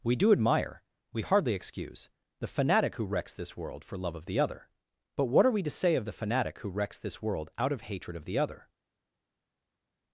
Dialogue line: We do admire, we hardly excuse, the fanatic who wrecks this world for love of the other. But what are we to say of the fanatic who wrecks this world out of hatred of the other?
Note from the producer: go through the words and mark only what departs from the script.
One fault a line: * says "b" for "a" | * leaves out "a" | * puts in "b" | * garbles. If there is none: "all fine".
all fine